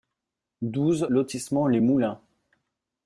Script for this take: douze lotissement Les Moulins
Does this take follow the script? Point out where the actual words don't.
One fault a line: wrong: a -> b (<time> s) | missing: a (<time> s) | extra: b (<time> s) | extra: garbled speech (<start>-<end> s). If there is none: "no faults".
no faults